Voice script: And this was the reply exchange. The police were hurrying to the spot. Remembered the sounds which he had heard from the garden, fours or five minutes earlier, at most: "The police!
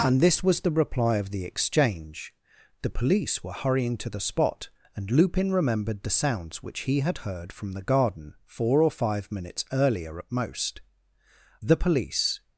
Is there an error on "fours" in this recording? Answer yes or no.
yes